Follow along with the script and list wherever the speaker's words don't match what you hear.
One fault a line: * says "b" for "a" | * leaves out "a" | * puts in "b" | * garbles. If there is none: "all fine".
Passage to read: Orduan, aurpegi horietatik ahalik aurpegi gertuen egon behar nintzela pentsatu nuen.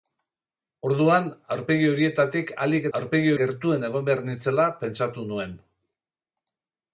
all fine